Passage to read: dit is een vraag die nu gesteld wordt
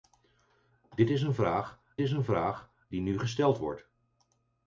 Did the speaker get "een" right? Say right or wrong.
right